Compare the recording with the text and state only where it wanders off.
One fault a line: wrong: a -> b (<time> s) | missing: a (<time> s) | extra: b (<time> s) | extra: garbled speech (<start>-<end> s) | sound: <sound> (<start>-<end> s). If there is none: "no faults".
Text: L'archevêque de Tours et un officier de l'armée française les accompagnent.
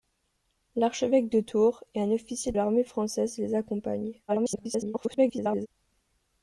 missing: de (2.5 s)
extra: garbled speech (4.3-5.7 s)